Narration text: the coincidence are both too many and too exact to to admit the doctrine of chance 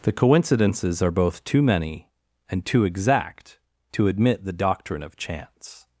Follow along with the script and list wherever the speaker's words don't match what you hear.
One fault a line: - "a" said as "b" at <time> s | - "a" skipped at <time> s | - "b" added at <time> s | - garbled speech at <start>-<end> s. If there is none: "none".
- "coincidence" said as "coincidences" at 0.1 s
- "to" skipped at 4.1 s